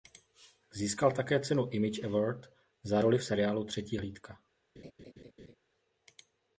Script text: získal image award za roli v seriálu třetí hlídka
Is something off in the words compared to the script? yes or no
yes